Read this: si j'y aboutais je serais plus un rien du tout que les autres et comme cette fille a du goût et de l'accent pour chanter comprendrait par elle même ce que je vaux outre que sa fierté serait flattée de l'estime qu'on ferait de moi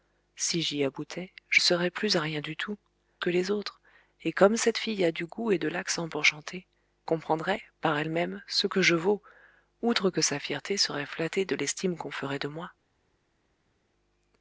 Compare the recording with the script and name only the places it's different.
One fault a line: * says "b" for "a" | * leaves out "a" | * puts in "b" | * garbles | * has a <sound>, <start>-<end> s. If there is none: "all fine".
all fine